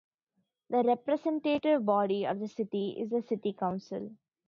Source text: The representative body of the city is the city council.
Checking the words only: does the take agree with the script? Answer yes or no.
yes